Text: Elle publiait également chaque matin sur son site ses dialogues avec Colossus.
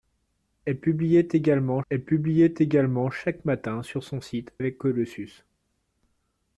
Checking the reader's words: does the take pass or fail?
fail